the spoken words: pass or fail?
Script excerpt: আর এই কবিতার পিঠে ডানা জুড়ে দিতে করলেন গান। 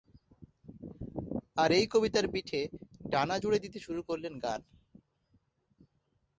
fail